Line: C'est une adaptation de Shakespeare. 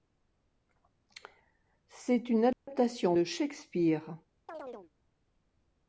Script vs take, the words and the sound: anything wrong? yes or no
yes